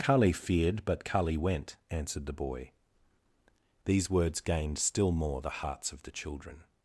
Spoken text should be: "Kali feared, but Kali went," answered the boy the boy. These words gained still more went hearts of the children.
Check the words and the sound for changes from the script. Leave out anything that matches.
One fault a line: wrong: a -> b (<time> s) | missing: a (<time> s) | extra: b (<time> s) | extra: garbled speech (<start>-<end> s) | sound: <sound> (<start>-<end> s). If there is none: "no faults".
missing: the boy (2.7 s)
wrong: went -> the (5.4 s)